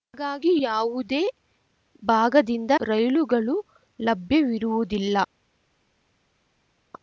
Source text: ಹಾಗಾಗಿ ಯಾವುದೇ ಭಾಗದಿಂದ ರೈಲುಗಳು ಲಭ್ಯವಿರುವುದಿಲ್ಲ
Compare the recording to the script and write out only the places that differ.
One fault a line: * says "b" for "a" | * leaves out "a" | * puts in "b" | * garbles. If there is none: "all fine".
all fine